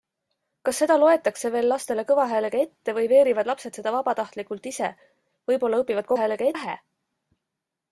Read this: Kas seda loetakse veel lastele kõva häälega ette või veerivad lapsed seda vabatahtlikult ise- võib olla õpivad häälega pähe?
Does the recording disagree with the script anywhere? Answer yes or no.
no